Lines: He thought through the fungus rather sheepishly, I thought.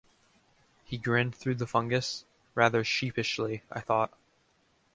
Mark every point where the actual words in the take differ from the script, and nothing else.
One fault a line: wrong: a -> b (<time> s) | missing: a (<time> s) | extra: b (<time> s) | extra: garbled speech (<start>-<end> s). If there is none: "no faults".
wrong: thought -> grinned (1.0 s)